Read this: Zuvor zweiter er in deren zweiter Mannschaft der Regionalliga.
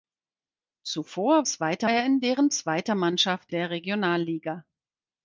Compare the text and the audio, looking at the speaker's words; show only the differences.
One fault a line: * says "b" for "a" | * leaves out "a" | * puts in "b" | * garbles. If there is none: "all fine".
all fine